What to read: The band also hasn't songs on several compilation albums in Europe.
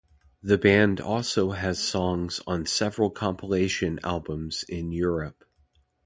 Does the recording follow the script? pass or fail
fail